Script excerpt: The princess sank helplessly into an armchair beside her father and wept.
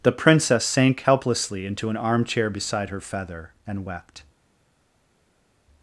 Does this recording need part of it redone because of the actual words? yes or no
yes